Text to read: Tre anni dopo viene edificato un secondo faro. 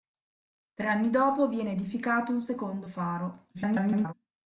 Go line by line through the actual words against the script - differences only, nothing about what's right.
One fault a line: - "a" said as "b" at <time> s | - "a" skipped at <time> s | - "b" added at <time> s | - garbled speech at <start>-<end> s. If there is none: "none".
- garbled speech at 3.5-4.1 s